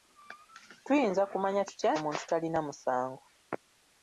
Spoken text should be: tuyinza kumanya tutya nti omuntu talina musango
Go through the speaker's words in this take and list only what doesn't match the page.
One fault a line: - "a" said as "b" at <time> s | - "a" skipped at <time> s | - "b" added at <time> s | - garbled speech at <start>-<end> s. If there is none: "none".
- "nti" skipped at 1.9 s